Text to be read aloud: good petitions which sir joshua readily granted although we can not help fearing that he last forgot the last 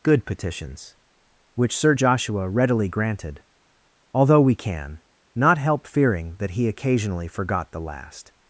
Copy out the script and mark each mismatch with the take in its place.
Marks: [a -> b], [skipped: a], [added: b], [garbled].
good petitions which sir joshua readily granted although we can not help fearing that he [last -> occasionally] forgot the last